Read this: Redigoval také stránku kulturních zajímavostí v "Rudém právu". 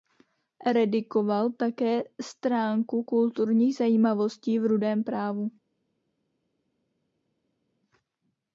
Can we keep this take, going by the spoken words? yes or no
yes